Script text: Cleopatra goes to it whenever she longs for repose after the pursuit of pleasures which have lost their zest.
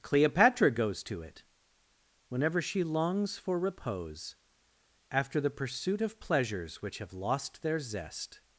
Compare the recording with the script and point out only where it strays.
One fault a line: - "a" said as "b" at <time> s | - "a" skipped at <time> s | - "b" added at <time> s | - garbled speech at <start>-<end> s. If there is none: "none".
none